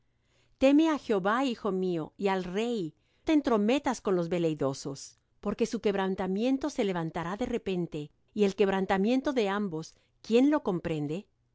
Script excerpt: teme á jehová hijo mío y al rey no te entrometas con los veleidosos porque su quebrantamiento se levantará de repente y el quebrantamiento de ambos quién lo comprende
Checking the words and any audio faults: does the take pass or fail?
fail